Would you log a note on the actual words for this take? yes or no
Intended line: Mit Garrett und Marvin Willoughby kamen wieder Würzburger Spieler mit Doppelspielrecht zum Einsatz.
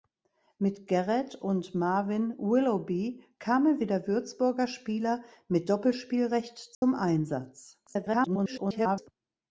yes